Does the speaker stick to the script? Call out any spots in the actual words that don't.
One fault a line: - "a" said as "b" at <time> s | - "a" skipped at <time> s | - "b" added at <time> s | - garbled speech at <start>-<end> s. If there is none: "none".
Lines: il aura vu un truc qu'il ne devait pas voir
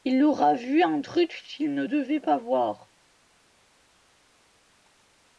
none